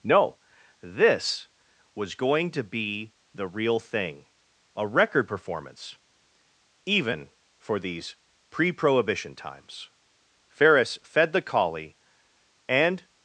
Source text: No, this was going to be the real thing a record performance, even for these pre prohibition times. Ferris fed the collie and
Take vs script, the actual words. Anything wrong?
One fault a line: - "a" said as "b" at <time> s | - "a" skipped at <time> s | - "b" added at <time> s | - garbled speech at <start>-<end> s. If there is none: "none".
none